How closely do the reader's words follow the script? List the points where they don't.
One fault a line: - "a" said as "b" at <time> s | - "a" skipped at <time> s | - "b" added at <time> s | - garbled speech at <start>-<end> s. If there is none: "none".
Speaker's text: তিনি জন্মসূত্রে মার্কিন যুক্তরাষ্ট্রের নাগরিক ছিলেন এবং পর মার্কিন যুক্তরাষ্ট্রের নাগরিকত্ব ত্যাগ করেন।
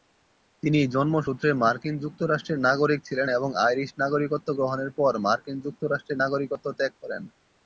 - "আইরিশ নাগরিকত্ব গ্রহণের" added at 3.7 s